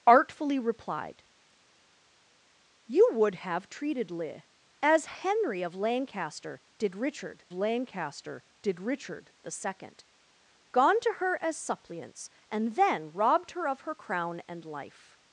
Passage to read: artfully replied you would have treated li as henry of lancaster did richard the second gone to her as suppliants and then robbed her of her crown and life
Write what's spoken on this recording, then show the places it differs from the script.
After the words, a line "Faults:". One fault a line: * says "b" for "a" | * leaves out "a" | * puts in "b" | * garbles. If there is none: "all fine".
artfully replied you would have treated li as henry of lancaster did richard lancaster did richard the second gone to her as suppliants and then robbed her of her crown and life
Faults:
* puts in "lancaster did richard"